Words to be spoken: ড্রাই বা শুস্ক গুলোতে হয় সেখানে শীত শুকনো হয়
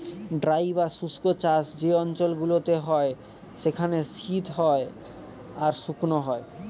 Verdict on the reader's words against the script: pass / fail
fail